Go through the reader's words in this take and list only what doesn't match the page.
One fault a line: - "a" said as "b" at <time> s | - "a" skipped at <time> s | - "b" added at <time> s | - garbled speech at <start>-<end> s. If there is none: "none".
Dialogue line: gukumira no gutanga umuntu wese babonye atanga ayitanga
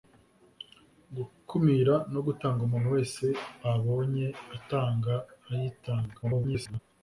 - garbled speech at 6.2-6.8 s